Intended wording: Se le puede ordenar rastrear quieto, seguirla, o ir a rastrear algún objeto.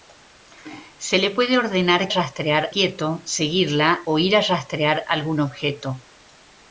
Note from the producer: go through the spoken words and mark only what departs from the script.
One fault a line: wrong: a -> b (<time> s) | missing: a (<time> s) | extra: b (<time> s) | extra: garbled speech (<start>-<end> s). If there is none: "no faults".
no faults